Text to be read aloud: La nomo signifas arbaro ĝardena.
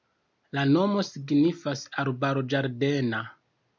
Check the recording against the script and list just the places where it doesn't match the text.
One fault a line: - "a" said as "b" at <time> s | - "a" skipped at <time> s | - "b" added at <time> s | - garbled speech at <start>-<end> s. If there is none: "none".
none